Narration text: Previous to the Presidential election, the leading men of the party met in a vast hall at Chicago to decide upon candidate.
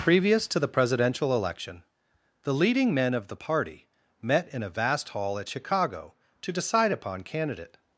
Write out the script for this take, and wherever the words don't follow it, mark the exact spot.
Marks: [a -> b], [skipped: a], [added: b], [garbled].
Previous to the Presidential election, the leading men of the party met in a vast hall at Chicago to decide upon candidate.